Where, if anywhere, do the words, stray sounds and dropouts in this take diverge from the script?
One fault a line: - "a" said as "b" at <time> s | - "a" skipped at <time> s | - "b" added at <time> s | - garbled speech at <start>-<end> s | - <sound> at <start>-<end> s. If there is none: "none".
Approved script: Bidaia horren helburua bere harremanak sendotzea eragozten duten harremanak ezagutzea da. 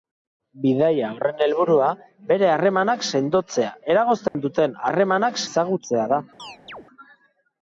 - dropout at 4.3-4.3 s
- chirp at 6.4-6.9 s